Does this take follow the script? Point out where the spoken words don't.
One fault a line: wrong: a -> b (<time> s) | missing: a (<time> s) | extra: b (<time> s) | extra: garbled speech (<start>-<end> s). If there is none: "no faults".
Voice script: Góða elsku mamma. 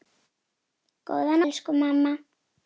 no faults